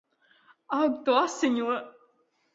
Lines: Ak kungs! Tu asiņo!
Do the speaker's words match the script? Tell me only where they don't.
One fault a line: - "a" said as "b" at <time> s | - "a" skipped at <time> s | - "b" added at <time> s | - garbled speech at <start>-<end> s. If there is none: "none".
- "kungs" skipped at 0.9 s